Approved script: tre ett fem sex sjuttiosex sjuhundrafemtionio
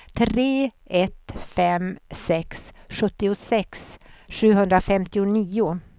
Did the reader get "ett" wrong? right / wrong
right